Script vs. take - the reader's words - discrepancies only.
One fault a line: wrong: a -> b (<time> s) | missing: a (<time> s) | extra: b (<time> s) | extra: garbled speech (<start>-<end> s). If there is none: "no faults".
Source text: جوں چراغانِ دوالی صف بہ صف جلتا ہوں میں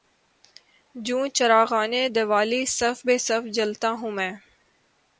no faults